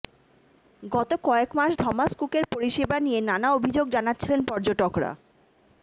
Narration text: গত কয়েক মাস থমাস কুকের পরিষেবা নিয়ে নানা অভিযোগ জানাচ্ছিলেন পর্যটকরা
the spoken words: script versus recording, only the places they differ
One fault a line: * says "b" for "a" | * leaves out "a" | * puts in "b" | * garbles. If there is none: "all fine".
all fine